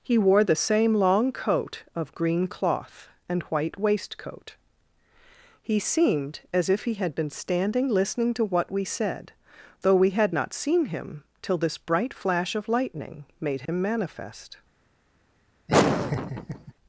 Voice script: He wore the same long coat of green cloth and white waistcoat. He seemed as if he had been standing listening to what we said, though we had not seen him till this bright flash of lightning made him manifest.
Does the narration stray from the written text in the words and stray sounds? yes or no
yes